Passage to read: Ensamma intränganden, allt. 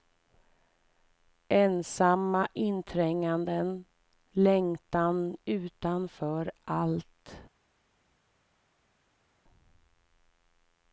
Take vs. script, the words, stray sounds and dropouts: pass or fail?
fail